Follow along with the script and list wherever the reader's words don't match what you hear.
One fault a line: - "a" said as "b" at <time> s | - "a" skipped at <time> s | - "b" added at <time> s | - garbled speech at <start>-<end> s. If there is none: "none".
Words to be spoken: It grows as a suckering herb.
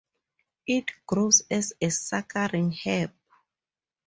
none